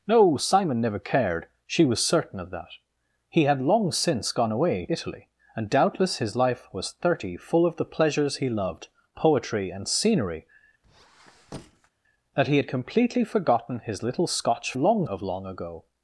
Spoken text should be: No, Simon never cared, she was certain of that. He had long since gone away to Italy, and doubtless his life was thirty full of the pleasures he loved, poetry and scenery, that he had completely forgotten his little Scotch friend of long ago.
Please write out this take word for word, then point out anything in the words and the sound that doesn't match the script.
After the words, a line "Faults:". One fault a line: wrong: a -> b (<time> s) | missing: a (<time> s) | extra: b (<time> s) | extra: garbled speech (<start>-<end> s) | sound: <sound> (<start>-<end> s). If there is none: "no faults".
No, Simon never cared, she was certain of that. He had long since gone away Italy, and doubtless his life was thirty full of the pleasures he loved, poetry and scenery, that he had completely forgotten his little Scotch long of long ago.
Faults:
missing: to (4.8 s)
sound: squeak (10.8-11.9 s)
wrong: friend -> long (14.8 s)